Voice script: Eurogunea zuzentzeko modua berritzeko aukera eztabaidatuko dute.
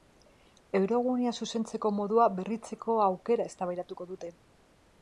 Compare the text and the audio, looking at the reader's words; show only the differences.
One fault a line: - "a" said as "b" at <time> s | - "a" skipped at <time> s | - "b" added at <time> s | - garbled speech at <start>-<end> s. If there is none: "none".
none